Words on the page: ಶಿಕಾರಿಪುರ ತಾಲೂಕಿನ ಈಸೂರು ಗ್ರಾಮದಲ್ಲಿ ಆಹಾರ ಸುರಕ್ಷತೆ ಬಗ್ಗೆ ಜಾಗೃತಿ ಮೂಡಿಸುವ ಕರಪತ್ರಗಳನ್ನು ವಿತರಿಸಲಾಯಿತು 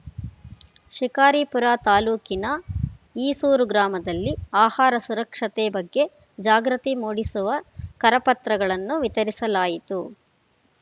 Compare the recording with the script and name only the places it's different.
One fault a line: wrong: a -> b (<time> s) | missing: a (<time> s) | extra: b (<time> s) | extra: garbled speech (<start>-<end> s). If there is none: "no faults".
no faults